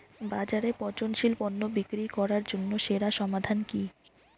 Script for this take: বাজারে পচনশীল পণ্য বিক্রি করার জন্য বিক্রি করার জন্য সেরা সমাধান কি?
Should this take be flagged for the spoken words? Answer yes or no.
yes